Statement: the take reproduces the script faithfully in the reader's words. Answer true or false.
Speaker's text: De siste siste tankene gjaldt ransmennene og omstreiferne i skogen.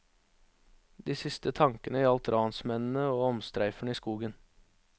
false